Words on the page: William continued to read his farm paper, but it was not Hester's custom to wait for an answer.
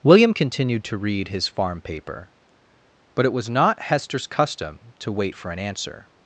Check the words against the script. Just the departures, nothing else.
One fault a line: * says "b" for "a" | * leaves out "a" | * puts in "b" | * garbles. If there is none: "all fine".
all fine